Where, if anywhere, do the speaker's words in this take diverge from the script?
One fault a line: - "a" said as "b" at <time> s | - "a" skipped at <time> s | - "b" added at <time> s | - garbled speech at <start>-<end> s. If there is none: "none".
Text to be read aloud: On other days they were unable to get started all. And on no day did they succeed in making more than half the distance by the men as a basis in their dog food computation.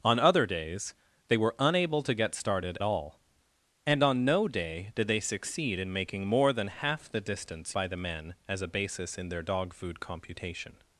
none